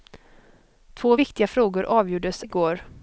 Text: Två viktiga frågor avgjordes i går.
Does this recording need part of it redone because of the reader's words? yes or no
no